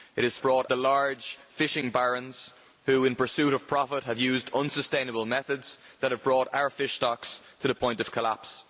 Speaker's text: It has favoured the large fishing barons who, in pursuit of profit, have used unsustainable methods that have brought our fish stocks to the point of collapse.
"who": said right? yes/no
yes